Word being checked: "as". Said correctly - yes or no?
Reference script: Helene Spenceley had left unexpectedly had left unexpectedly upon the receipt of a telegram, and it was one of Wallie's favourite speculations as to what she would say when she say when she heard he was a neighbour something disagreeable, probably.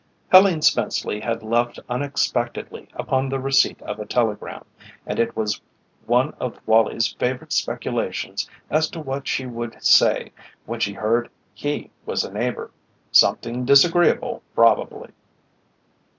yes